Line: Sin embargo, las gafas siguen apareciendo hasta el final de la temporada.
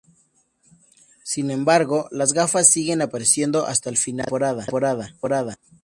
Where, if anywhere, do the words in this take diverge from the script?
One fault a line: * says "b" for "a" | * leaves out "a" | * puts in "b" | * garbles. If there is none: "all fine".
* puts in "de la"